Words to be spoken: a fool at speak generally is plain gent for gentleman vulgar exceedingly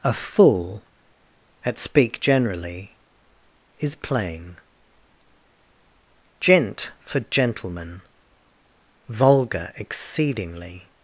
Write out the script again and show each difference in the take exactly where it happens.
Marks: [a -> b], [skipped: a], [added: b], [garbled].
a fool at speak generally is plain gent for gentleman vulgar exceedingly